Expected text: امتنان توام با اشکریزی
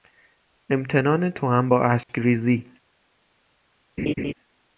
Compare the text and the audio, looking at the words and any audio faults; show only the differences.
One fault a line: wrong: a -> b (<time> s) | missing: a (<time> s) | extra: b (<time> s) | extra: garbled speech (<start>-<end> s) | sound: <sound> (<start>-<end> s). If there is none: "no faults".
sound: dropout (2.0-2.1 s)
sound: laugh (4.0-4.3 s)